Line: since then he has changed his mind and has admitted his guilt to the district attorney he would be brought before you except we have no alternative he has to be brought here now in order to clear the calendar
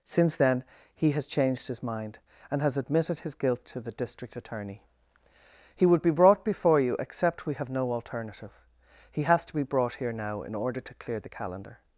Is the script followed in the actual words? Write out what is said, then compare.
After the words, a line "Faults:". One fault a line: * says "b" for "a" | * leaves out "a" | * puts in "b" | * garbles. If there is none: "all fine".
since then he has changed his mind and has admitted his guilt to the district attorney he would be brought before you except we have no alternative he has to be brought here now in order to clear the calendar
Faults:
all fine